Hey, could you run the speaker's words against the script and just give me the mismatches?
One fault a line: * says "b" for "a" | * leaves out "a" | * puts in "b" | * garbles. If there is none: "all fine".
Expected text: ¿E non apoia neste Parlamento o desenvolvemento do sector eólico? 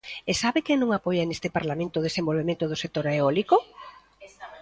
* puts in "sabe quen"